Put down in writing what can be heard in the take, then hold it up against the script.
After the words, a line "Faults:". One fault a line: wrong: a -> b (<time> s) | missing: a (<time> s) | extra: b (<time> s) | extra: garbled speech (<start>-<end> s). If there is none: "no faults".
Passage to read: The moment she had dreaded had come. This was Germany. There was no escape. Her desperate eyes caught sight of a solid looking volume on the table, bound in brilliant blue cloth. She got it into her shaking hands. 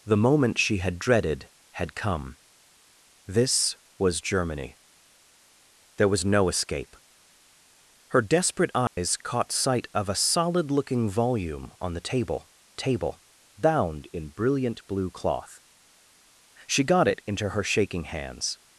The moment she had dreaded had come. This was Germany. There was no escape. Her desperate eyes caught sight of a solid looking volume on the table table, bound in brilliant blue cloth. She got it into her shaking hands.
Faults:
extra: table (12.7 s)